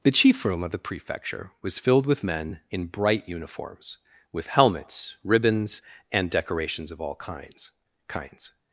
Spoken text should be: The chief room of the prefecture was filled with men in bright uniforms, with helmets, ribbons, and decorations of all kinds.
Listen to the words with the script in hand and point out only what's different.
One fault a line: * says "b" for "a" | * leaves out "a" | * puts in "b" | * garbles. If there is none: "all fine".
* puts in "kinds"